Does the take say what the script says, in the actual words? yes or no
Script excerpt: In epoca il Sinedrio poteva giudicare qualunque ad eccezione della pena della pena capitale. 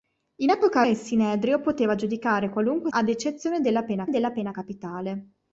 yes